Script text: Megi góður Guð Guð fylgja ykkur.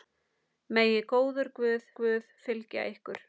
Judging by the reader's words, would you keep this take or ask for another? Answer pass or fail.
pass